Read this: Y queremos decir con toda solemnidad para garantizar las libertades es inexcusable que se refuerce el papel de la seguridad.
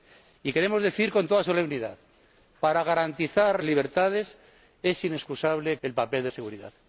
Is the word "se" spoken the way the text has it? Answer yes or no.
no